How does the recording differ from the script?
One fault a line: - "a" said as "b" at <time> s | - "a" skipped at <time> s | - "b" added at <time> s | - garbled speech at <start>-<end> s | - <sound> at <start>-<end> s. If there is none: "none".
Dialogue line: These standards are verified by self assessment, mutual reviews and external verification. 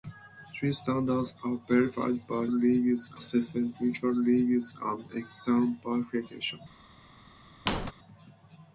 - "self" said as "reviews" at 2.5 s
- squeak at 7.7-7.9 s